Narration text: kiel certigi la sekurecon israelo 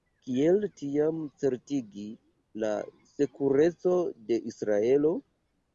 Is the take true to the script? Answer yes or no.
no